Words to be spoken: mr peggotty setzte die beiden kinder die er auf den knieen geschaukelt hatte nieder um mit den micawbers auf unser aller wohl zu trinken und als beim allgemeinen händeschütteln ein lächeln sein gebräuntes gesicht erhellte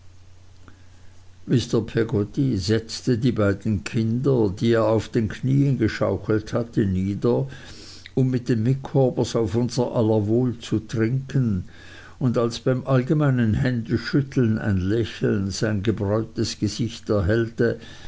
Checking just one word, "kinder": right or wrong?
right